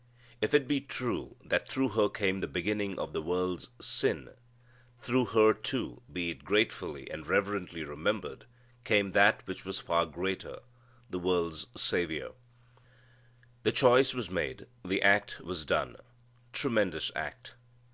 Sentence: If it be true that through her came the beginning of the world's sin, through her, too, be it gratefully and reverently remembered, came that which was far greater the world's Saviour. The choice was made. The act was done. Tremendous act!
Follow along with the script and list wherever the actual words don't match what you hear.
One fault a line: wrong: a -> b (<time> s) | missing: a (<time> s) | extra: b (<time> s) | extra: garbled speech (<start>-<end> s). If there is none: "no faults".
no faults